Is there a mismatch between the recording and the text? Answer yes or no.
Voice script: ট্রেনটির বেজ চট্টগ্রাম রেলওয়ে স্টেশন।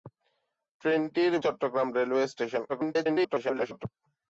yes